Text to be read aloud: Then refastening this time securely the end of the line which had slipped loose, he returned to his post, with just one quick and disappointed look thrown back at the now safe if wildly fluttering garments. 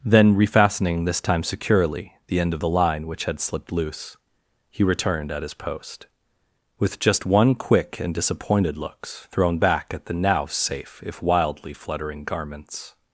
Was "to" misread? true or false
true